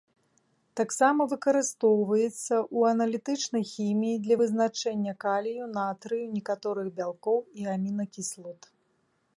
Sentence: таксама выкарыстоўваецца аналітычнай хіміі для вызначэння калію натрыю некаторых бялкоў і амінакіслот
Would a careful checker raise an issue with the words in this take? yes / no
yes